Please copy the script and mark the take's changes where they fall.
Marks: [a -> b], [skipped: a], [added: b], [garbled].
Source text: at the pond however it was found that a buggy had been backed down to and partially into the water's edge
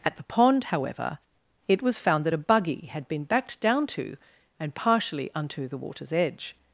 at the pond however it was found that a buggy had been backed down to and partially [into -> unto] the water's edge